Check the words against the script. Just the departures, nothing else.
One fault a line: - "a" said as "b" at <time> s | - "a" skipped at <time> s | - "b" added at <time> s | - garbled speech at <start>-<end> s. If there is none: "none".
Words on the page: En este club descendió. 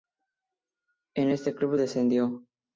none